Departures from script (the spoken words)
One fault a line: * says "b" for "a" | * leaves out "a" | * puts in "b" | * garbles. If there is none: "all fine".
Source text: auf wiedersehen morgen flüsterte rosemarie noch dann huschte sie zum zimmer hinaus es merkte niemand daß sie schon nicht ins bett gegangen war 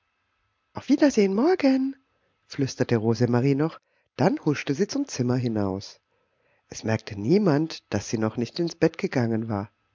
* says "noch" for "schon"